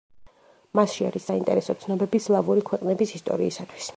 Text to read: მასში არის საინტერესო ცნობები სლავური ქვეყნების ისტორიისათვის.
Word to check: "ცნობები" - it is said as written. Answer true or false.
true